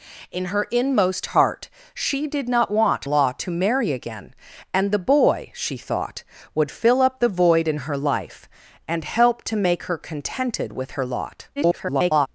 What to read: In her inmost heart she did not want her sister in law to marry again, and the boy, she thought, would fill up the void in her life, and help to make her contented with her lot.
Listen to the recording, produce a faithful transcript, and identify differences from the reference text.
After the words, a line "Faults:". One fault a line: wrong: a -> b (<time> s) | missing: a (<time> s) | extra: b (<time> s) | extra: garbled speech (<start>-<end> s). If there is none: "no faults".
In her inmost heart she did not want law to marry again, and the boy, she thought, would fill up the void in her life, and help to make her contented with her lot. [garbled]
Faults:
missing: her sister in (3.0 s)
extra: garbled speech (11.6-12.3 s)